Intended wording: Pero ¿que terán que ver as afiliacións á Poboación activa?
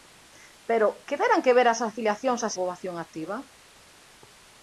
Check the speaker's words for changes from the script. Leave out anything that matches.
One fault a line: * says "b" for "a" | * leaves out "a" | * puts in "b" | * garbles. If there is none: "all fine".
all fine